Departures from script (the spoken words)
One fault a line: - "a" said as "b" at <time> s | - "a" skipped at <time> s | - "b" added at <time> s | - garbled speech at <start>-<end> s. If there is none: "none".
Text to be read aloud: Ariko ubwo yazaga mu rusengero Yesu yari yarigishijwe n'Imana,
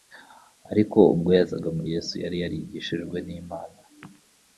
- "rusengero" skipped at 1.8 s